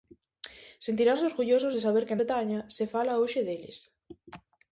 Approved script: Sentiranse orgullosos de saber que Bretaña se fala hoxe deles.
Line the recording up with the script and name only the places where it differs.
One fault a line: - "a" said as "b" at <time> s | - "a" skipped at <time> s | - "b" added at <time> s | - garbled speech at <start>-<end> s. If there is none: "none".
none